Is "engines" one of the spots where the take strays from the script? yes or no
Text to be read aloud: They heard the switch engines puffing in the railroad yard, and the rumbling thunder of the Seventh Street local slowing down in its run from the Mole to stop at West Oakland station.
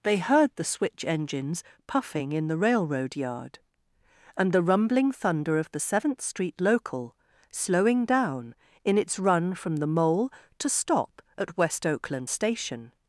no